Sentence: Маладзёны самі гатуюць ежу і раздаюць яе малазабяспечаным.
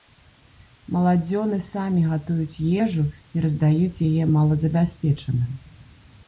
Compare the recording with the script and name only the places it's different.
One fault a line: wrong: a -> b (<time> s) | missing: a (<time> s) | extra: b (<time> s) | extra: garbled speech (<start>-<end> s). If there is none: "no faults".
no faults